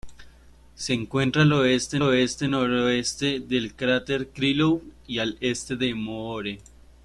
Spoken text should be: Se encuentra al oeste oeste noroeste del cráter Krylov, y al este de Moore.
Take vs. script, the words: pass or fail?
pass